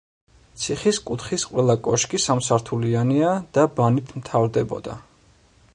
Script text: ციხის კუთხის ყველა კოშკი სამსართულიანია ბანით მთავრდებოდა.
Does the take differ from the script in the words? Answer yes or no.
yes